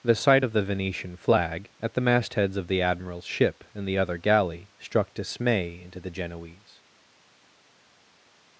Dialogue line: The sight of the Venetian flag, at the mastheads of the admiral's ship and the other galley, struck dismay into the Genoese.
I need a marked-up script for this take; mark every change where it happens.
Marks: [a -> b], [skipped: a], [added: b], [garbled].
The sight of the Venetian flag, at the mastheads of the admiral's ship and the other galley, struck dismay into the Genoese.